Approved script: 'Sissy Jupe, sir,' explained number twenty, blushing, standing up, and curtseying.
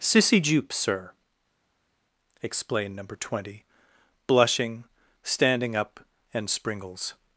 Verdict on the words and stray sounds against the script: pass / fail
fail